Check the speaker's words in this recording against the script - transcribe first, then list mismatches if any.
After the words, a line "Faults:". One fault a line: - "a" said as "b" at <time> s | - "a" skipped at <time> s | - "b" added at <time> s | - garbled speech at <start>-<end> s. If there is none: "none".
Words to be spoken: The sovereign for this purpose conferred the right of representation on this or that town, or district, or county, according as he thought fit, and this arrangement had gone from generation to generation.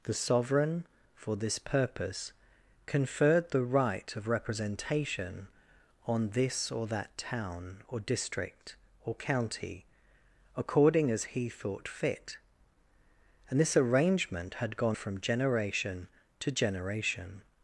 The sovereign for this purpose conferred the right of representation on this or that town, or district, or county, according as he thought fit, and this arrangement had gone from generation to generation.
Faults:
none